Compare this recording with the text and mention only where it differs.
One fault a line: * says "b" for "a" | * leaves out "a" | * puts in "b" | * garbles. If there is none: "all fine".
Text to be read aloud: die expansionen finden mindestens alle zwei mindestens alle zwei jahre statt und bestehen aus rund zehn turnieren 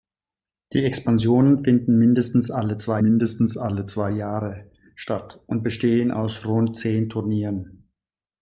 all fine